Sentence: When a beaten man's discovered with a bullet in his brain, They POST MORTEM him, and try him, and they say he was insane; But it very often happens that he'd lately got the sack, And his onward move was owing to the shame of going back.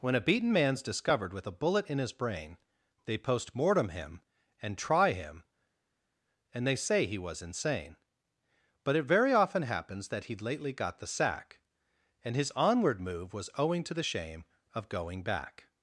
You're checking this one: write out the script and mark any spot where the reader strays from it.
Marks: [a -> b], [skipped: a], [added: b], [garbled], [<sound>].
When a beaten man's discovered with a bullet in his brain, They POST MORTEM him, and try him, and they say he was insane; But it very often happens that he'd lately got the sack, And his onward move was owing to the shame of going back.